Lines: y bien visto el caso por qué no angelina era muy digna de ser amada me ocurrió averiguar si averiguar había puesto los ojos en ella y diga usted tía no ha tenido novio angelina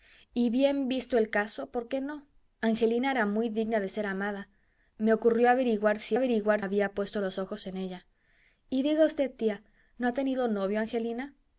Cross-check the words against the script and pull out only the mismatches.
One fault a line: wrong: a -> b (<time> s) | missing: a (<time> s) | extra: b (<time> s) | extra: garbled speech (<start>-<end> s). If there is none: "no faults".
no faults